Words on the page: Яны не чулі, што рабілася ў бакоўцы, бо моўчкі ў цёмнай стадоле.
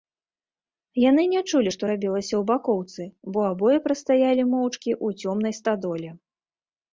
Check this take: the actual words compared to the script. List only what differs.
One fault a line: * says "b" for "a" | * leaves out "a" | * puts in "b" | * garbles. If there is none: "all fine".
* puts in "абое прастаялі"